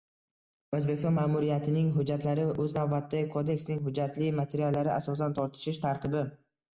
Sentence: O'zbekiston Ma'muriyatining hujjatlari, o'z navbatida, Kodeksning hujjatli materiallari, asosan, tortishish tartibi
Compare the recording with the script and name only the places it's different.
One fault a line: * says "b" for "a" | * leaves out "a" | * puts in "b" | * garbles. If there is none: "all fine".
all fine